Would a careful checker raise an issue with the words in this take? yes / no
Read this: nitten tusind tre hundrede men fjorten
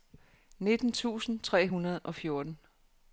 yes